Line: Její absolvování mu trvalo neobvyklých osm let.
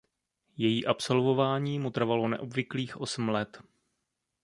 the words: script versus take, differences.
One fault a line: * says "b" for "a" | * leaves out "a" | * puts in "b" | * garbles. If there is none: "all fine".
all fine